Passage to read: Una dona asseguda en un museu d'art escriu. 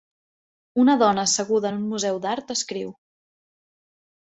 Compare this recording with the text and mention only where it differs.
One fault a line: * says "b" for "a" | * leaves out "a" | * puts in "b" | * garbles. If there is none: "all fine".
all fine